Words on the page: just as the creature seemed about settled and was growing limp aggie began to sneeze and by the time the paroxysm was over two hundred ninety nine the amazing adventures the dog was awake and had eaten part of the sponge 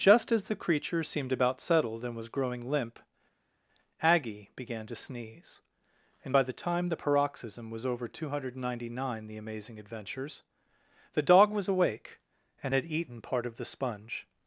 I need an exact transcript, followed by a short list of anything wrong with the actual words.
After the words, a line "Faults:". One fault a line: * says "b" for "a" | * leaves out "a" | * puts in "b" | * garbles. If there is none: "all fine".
just as the creature seemed about settled and was growing limp aggie began to sneeze and by the time the paroxysm was over two hundred ninety nine the amazing adventures the dog was awake and had eaten part of the sponge
Faults:
all fine